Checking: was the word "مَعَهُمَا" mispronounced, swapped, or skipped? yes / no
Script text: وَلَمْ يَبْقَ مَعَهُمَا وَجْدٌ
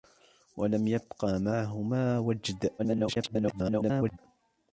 no